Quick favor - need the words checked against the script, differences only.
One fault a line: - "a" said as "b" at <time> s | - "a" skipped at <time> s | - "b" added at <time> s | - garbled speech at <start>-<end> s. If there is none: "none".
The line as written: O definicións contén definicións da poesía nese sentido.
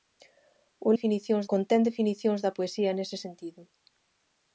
none